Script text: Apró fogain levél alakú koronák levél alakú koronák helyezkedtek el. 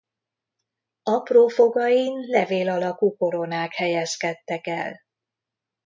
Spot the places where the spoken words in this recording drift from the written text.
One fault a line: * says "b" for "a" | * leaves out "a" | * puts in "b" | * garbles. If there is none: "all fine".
* leaves out "levél alakú koronák"